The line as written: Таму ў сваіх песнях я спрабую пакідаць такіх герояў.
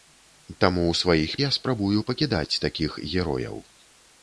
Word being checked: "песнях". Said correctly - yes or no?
no